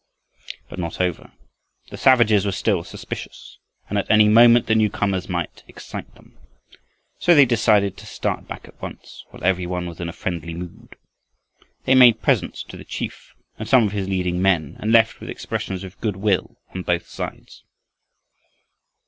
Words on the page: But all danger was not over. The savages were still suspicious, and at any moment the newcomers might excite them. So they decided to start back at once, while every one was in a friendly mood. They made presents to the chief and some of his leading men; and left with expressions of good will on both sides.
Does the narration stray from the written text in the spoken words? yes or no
yes